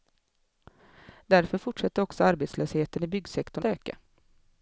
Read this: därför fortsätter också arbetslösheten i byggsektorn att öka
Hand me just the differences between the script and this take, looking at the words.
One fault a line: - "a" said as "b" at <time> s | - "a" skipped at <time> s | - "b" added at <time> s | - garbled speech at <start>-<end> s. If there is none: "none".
- "att" skipped at 3.6 s